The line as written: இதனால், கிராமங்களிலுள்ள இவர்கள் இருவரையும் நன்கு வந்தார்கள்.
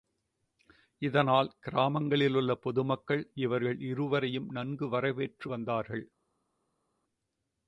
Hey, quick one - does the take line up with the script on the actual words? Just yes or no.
no